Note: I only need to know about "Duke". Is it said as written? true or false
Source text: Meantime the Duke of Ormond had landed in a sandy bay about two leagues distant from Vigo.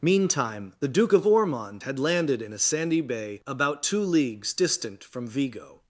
true